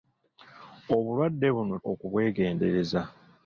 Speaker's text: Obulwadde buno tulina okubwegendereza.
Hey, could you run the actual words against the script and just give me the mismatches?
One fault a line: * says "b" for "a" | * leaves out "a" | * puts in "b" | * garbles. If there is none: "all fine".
* leaves out "tulina"